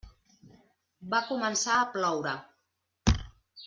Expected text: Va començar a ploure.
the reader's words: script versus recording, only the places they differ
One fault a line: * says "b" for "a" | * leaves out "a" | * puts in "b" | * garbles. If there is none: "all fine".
all fine